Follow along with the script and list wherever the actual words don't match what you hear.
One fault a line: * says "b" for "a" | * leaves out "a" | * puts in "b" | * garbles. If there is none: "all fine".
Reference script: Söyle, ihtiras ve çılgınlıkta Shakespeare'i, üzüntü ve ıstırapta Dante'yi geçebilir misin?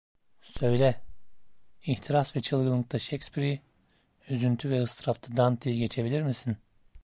all fine